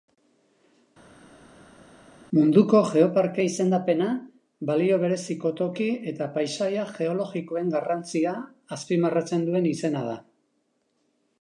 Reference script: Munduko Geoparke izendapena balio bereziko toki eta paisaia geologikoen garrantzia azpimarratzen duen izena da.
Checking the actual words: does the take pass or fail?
pass